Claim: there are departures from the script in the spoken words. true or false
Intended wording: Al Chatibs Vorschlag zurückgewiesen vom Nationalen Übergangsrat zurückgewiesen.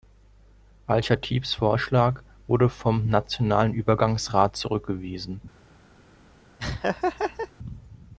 true